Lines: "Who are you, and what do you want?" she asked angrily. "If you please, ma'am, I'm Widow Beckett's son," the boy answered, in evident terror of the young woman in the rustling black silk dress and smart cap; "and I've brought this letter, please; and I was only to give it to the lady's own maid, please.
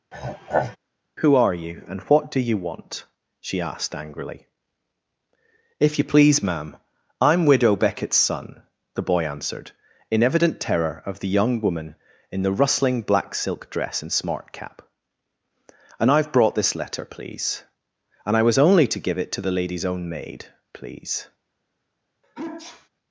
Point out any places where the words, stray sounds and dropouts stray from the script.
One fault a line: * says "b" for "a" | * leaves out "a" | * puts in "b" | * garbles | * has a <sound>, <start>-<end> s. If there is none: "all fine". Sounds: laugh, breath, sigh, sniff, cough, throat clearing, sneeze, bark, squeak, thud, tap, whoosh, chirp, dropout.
* has a throat clearing, 0.1-0.8 s
* has a sneeze, 22.2-22.9 s